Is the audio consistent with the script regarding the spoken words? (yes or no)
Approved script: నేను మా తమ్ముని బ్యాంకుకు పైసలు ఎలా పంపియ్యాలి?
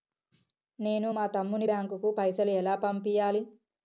yes